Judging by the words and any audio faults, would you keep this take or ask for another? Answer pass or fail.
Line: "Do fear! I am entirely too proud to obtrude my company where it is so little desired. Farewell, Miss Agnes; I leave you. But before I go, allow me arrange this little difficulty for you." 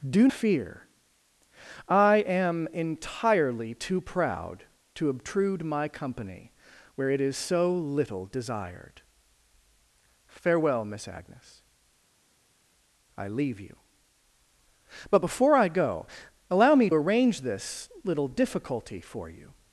pass